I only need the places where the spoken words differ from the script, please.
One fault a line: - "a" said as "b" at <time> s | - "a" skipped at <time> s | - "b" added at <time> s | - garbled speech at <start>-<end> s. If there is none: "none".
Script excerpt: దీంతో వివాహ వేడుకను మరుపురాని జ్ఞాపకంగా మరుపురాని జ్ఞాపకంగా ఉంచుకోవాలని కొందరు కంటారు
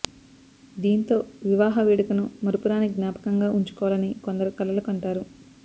- "మరుపురాని జ్ఞాపకంగా" skipped at 3.5 s
- "కలలు" added at 4.6 s